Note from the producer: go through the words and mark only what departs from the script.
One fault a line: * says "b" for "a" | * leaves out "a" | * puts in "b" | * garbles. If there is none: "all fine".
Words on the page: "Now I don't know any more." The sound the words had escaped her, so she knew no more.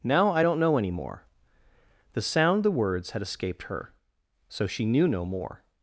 all fine